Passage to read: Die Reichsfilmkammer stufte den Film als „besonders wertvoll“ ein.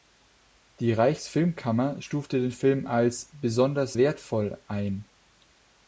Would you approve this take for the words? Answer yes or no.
yes